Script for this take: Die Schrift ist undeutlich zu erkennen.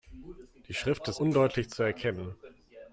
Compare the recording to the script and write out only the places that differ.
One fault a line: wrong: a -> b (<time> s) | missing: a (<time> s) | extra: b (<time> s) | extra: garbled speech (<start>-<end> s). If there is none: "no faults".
no faults